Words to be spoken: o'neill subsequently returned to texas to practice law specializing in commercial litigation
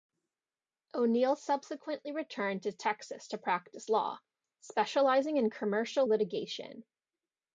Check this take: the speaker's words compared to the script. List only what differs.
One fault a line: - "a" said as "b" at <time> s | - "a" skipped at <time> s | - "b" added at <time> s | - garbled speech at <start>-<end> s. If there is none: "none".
none